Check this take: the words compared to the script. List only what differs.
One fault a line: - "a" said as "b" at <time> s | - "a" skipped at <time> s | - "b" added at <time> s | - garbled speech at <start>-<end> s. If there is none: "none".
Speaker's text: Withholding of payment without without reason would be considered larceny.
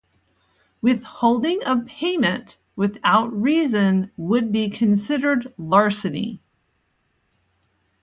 - "without" skipped at 3.3 s